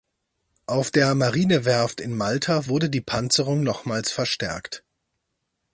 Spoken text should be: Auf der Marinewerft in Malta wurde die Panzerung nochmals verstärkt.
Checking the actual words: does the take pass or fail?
pass